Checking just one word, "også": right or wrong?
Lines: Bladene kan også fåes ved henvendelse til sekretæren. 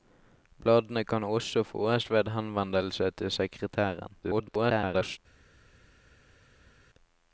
right